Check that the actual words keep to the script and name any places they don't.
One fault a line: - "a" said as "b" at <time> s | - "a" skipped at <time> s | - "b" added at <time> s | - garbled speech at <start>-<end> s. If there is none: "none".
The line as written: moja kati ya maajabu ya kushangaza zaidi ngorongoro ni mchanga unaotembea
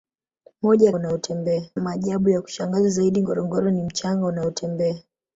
- "kati" said as "unaotembea" at 0.9 s